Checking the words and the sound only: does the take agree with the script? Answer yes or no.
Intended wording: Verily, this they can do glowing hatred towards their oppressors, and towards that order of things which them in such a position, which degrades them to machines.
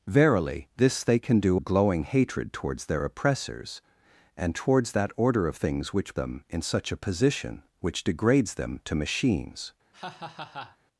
no